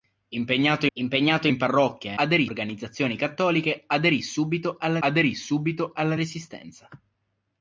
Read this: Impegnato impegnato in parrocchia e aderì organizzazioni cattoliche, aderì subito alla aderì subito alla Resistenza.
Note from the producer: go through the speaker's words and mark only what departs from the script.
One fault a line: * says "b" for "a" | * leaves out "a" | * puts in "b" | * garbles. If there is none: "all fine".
all fine